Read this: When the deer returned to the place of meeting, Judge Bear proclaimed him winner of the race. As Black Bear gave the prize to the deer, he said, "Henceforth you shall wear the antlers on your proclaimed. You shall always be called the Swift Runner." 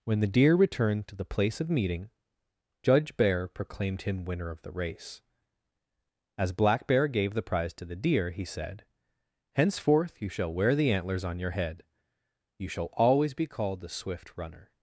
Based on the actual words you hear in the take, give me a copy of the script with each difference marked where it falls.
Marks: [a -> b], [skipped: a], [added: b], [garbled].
When the deer returned to the place of meeting, Judge Bear proclaimed him winner of the race. As Black Bear gave the prize to the deer, he said, "Henceforth you shall wear the antlers on your [proclaimed. -> head] You shall always be called the Swift Runner."